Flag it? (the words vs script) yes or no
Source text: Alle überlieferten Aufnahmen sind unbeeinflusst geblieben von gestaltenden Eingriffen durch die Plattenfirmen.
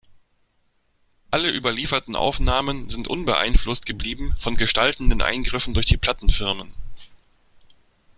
no